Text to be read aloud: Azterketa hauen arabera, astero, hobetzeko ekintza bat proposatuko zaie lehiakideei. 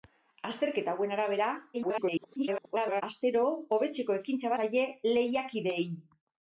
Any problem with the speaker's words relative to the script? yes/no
yes